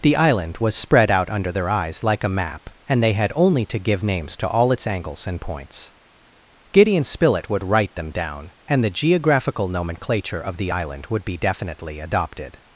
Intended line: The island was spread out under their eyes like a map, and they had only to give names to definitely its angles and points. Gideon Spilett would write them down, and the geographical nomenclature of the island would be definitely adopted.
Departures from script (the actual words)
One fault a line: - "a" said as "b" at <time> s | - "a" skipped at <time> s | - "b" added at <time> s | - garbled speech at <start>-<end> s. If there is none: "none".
- "definitely" said as "all" at 4.5 s